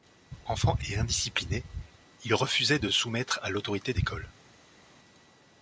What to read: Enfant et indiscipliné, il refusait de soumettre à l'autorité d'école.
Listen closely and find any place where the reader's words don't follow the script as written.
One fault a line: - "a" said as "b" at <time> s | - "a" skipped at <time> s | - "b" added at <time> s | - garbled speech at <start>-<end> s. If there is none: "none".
none